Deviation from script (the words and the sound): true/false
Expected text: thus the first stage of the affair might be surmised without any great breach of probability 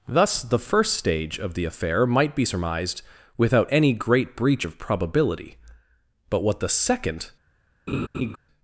true